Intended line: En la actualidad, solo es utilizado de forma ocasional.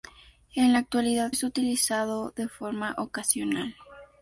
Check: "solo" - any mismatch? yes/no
yes